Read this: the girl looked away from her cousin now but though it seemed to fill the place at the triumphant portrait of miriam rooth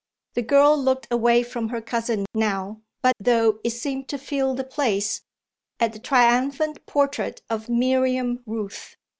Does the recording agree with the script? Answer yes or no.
yes